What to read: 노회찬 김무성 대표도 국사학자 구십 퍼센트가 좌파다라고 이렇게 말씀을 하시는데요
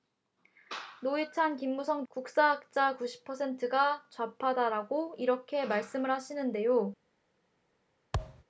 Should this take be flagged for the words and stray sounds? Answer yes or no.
yes